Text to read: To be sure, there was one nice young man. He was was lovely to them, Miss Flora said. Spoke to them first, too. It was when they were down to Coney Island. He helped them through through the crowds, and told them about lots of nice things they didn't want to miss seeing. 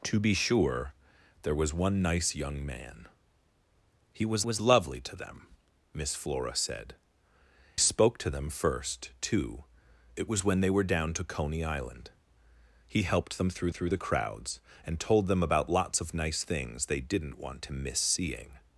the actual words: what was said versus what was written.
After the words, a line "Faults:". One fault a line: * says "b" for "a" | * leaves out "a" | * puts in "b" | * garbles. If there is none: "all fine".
To be sure, there was one nice young man. He was was lovely to them, Miss Flora said. Spoke to them first, too. It was when they were down to Coney Island. He helped them through through the crowds, and told them about lots of nice things they didn't want to miss seeing.
Faults:
all fine